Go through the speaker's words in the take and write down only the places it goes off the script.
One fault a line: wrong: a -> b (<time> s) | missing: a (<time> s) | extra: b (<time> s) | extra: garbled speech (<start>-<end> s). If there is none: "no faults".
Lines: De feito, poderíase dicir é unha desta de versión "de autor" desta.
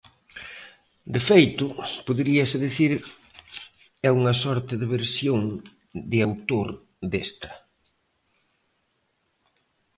wrong: desta -> sorte (4.4 s)